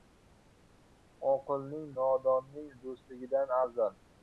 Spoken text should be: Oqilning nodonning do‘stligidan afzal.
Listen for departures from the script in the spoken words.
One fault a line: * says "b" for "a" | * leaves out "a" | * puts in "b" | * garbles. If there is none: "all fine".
all fine